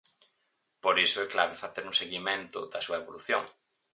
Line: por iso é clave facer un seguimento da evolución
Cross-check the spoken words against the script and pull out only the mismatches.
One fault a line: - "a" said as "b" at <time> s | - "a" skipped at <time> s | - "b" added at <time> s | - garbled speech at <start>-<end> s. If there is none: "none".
- "súa" added at 2.9 s